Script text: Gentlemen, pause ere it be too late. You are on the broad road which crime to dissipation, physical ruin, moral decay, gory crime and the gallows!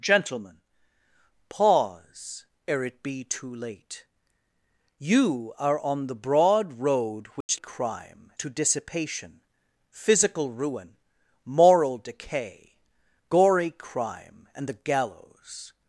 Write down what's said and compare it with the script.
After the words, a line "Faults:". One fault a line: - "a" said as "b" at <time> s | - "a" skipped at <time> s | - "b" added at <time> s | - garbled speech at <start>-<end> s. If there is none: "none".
Gentlemen, pause ere it be too late. You are on the broad road which crime to dissipation, physical ruin, moral decay, gory crime and the gallows!
Faults:
none